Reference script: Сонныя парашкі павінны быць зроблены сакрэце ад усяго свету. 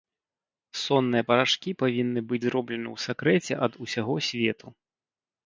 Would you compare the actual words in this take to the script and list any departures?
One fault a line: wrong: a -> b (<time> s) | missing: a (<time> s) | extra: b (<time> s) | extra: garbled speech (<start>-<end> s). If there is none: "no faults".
extra: ў (2.9 s)